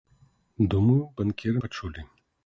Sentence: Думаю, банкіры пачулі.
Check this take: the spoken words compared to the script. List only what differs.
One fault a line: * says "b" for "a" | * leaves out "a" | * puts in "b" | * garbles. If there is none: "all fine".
all fine